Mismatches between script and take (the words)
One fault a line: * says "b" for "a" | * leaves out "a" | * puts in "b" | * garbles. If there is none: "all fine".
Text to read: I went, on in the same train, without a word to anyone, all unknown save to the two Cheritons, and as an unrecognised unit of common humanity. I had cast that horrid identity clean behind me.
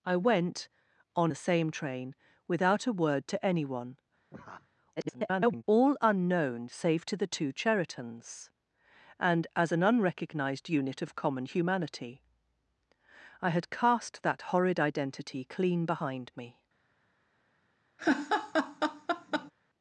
* leaves out "in"
* garbles